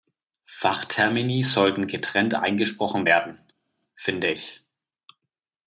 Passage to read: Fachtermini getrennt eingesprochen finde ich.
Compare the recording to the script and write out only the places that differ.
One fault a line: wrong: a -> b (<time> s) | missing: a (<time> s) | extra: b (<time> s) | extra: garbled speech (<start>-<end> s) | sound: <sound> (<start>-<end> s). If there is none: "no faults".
extra: sollten (1.4 s)
extra: werden (3.0 s)